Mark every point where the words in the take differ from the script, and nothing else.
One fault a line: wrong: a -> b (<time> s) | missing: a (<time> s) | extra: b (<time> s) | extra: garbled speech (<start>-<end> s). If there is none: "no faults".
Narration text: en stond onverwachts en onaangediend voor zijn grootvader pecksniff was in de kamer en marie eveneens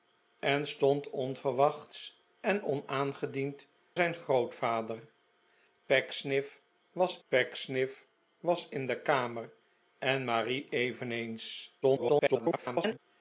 missing: voor (3.7 s)
extra: pecksniff was (7.3 s)
extra: garbled speech (11.8-13.0 s)